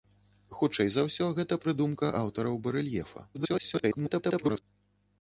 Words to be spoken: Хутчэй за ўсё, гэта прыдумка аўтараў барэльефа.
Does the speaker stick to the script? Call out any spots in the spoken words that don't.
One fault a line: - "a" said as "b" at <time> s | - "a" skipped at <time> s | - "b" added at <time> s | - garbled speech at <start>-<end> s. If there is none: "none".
- garbled speech at 3.3-4.6 s